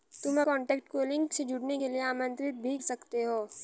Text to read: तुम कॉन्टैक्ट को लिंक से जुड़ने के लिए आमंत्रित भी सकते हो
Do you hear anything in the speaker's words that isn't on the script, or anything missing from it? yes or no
no